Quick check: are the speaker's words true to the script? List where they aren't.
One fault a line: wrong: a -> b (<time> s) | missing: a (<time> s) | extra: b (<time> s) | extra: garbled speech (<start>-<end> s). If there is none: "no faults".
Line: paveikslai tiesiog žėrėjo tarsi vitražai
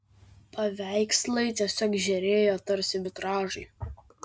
no faults